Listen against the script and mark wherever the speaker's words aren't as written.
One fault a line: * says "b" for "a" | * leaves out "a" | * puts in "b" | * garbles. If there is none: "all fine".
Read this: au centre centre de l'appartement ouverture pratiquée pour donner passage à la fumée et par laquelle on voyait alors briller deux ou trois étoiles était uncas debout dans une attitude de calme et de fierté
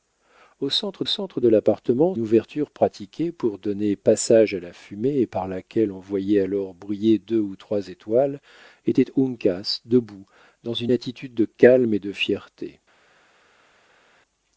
all fine